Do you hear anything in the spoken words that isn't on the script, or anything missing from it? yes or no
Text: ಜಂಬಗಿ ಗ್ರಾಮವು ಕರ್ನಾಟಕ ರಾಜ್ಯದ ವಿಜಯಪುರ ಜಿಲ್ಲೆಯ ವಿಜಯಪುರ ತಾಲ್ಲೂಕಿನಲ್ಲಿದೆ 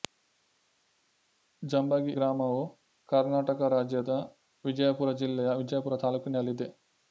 no